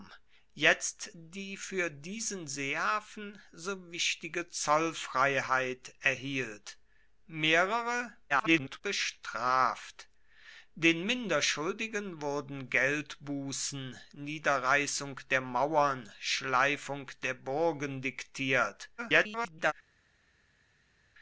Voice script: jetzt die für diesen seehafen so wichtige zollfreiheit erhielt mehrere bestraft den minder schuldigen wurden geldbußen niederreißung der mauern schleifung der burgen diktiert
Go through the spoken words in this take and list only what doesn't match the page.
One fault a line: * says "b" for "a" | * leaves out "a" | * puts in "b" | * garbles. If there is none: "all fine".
* garbles
* garbles